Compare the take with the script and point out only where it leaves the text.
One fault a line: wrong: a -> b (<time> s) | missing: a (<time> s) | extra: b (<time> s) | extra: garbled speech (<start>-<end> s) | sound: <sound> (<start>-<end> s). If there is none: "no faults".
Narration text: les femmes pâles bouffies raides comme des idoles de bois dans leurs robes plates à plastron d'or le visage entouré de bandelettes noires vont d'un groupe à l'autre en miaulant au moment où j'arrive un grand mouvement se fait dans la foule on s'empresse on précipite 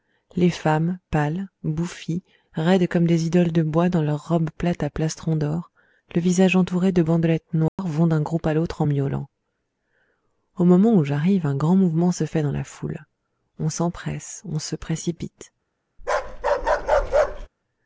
sound: dropout (7.7-7.8 s)
extra: se (14.6 s)
sound: bark (16.0-17.5 s)